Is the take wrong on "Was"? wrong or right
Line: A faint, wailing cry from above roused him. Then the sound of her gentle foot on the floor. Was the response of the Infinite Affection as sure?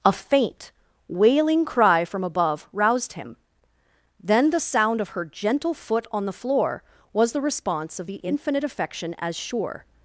right